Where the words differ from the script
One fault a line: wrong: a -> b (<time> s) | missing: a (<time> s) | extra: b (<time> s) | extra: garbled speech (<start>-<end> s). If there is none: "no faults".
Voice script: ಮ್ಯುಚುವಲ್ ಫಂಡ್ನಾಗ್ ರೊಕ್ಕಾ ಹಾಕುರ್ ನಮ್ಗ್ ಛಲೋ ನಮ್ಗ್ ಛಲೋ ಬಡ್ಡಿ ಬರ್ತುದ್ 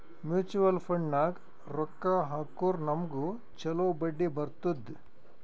missing: ನಮ್ಗ್ ಛಲೋ (3.9 s)